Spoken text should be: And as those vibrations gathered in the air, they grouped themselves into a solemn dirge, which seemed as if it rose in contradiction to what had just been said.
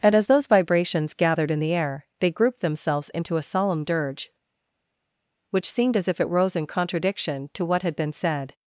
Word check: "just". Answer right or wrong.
wrong